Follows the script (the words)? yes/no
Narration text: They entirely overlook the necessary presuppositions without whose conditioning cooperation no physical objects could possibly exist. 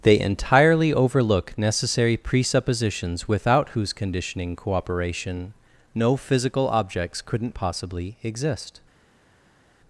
no